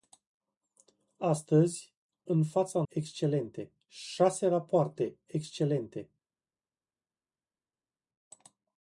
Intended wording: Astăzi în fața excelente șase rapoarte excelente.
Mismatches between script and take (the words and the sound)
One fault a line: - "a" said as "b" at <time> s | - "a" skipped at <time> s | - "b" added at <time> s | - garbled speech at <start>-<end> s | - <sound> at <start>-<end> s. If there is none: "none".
none